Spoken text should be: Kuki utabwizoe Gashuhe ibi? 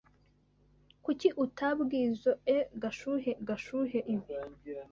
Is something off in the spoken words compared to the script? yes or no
yes